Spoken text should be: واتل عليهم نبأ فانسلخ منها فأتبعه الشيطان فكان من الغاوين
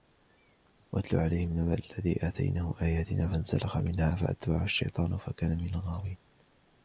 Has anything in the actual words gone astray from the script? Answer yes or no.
yes